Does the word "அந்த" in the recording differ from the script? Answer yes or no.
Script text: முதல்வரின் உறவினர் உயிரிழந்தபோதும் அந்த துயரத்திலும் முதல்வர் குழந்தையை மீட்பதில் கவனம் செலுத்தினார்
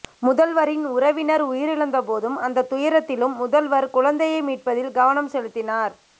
no